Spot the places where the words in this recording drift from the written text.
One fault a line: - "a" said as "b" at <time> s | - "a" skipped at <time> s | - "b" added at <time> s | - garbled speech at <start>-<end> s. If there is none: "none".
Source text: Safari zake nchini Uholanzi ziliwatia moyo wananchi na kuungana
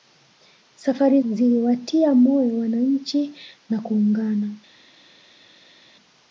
- "zake nchini Uholanzi" skipped at 1.2 s